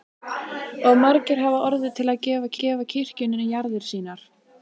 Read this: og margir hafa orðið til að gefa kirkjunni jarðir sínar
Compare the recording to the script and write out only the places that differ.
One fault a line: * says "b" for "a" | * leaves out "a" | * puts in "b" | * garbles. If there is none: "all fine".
* puts in "gefa"